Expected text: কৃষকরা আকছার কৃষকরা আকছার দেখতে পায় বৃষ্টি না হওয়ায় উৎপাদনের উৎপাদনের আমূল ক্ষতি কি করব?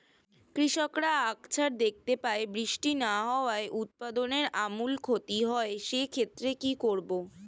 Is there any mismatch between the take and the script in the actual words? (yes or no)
yes